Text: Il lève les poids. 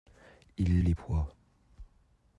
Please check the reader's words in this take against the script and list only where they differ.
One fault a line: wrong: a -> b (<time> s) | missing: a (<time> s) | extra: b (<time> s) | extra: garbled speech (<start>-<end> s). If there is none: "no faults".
missing: lève (0.8 s)